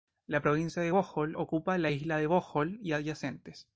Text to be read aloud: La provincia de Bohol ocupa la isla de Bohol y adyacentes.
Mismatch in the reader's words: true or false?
false